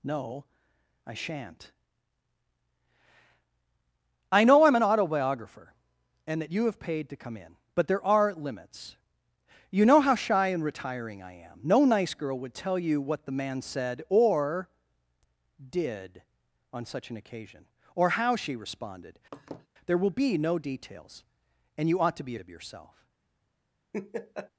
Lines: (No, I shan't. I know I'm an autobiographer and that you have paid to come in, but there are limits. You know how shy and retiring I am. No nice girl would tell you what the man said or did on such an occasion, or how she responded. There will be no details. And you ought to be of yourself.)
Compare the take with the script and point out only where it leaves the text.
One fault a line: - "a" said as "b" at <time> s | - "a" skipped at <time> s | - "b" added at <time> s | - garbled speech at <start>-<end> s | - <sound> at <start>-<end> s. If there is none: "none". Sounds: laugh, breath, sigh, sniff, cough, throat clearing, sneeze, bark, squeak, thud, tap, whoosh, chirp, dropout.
- laugh at 19.3-19.7 s
- laugh at 23.9-24.5 s